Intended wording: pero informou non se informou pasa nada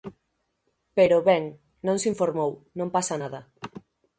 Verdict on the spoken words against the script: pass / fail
fail